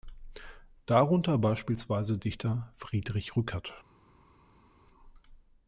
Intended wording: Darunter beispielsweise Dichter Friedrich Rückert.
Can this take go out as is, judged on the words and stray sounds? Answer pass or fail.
pass